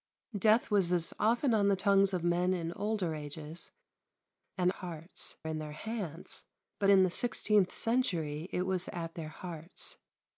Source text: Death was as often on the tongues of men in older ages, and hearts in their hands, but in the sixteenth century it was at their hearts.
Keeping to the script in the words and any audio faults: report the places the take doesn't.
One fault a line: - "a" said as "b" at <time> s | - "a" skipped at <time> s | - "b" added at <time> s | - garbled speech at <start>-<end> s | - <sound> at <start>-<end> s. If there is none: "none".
none